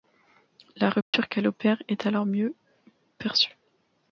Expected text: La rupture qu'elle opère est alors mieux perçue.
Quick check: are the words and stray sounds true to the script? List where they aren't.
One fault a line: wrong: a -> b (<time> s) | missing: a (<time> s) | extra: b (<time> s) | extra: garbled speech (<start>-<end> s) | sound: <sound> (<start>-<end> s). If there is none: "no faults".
sound: dropout (1.0-1.1 s)